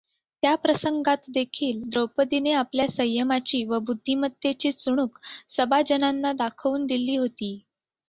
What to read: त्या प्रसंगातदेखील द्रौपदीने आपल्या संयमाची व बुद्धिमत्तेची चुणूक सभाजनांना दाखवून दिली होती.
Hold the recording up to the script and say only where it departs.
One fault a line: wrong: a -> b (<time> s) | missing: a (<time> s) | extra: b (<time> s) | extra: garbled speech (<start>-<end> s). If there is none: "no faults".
no faults